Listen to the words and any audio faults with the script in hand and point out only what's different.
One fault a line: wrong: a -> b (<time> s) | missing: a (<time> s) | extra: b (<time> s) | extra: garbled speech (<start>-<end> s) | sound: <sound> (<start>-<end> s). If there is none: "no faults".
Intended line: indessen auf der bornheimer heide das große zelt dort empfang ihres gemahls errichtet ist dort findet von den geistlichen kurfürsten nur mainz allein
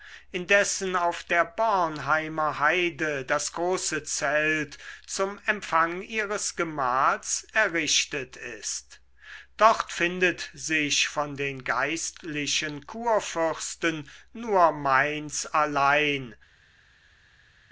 wrong: dort -> zum (5.0 s)
extra: sich (10.5 s)